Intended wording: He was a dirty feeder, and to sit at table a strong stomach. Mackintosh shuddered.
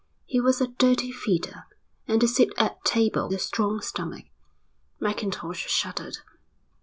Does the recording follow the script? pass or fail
pass